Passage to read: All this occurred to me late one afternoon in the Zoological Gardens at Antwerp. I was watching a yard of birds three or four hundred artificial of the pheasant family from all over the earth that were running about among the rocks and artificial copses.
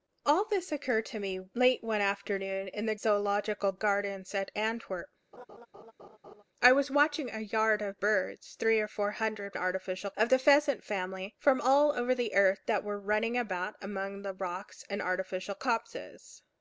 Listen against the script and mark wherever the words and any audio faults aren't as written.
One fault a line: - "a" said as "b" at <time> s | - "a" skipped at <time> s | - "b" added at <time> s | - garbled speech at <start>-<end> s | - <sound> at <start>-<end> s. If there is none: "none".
- laugh at 5.3-6.4 s